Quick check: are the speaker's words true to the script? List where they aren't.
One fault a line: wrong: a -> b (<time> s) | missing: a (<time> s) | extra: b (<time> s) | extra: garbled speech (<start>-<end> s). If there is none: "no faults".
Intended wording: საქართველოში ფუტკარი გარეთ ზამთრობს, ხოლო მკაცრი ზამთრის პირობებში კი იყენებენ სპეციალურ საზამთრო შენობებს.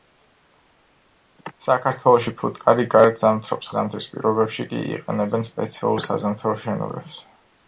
missing: ხოლო მკაცრი (3.7 s)